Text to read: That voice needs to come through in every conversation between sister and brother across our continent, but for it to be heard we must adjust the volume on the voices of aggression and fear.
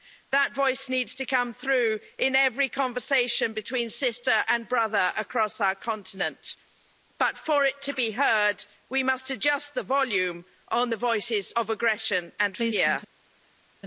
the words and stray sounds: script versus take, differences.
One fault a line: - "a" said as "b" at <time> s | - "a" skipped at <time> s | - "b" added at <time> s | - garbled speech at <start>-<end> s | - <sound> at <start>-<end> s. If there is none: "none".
none